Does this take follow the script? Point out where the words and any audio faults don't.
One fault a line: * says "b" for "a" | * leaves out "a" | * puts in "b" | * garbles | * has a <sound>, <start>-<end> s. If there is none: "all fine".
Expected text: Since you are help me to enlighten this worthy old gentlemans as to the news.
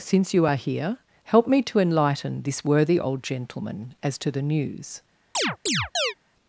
* puts in "here"
* says "gentleman" for "gentlemans"
* has a chirp, 5.3-6.1 s